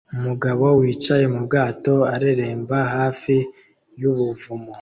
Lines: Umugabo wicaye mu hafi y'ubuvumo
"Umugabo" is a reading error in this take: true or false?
false